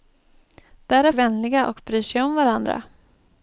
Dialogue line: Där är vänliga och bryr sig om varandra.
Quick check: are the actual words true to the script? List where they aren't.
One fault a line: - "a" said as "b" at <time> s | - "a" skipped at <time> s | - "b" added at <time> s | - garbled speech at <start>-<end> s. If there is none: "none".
none